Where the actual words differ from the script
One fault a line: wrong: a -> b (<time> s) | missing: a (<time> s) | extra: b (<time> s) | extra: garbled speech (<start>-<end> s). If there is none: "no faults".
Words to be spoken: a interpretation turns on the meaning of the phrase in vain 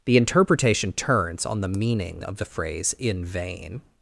wrong: a -> the (0.1 s)